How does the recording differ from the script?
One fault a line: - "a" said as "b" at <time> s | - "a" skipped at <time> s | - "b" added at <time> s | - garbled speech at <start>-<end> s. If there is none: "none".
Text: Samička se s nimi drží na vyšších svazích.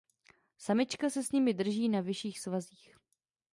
none